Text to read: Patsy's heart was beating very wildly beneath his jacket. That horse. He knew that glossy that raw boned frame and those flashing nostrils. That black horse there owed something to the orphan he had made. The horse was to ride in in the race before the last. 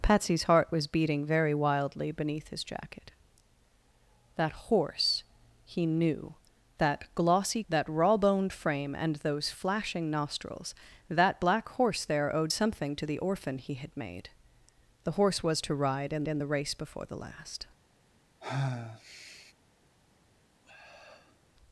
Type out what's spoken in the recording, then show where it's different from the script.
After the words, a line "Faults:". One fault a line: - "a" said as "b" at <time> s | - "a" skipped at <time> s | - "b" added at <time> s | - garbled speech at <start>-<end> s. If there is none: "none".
Patsy's heart was beating very wildly beneath his jacket. That horse. He knew that glossy that raw boned frame and those flashing nostrils. That black horse there owed something to the orphan he had made. The horse was to ride in in the race before the last.
Faults:
none